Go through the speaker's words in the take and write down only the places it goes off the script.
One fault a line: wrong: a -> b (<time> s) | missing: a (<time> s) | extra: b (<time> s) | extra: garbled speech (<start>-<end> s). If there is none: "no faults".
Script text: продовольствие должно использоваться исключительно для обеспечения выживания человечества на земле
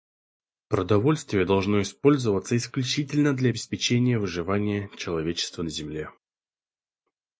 no faults